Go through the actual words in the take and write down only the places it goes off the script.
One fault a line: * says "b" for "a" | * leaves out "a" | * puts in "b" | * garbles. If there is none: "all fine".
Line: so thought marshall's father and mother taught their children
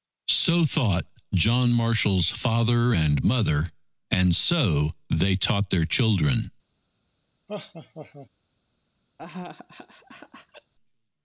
* puts in "john"
* puts in "and so they"